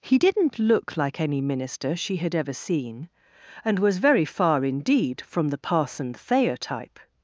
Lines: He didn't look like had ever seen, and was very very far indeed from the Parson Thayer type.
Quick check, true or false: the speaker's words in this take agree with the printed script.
false